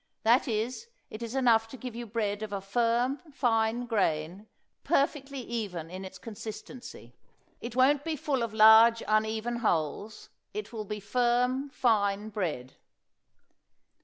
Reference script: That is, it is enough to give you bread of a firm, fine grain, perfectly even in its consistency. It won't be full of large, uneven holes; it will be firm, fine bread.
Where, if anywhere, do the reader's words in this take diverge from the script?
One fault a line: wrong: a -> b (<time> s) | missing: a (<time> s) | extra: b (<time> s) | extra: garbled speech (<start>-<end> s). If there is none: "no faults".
no faults